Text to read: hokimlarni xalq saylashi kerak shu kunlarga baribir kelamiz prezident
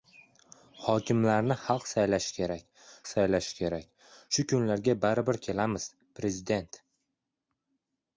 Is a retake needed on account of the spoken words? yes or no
yes